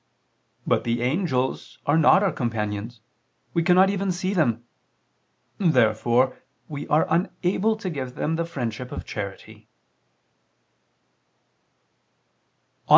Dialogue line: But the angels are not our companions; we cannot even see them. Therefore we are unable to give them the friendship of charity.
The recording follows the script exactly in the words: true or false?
true